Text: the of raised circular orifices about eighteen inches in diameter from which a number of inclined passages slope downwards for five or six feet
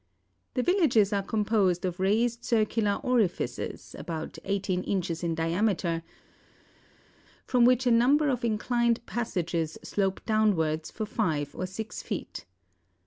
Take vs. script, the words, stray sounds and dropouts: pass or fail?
fail